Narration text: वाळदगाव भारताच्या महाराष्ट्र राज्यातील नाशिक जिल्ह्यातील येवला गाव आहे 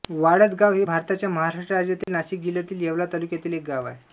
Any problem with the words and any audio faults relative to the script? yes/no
yes